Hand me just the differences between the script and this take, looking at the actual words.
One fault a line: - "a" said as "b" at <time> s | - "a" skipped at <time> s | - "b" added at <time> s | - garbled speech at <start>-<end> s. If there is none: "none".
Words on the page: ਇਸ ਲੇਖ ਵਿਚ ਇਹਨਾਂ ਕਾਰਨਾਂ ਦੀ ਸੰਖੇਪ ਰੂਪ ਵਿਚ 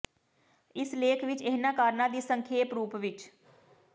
none